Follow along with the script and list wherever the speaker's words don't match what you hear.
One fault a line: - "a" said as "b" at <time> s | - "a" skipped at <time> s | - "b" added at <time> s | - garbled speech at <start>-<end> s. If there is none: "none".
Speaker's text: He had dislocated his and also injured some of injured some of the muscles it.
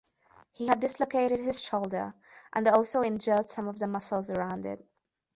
- "shoulder" added at 1.6 s
- "injured some of" skipped at 3.8 s
- "around" added at 4.3 s